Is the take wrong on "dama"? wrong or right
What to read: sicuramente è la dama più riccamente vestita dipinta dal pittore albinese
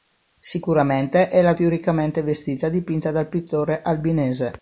wrong